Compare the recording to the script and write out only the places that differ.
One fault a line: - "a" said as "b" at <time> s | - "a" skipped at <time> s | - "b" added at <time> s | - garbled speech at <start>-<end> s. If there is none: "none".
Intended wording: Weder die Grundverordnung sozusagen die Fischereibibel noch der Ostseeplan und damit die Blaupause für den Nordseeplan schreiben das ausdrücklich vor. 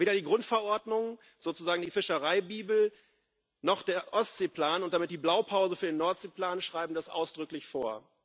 none